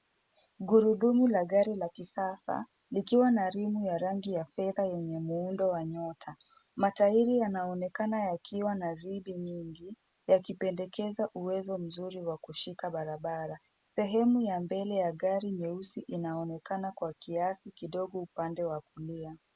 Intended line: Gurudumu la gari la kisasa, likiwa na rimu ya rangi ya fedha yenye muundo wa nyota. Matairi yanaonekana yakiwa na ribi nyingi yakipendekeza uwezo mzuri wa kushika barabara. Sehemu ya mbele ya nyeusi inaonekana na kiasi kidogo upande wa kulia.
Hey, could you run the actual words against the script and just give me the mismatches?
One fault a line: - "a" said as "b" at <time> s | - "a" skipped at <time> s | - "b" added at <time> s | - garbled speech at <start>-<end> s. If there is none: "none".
- "gari" added at 15.1 s
- "na" said as "kwa" at 16.9 s